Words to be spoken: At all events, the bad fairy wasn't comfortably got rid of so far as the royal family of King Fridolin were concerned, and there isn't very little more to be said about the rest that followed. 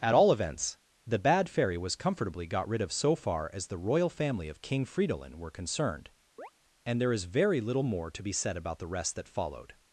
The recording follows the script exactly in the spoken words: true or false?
false